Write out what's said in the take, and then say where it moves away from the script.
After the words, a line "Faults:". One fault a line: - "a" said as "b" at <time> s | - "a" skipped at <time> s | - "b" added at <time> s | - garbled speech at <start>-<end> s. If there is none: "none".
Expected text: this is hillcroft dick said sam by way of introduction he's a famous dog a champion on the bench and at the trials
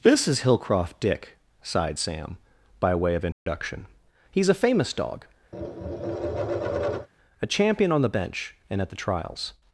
this is hillcroft dick sighed sam by way of introduction he's a famous dog a champion on the bench and at the trials
Faults:
- "said" said as "sighed" at 1.6 s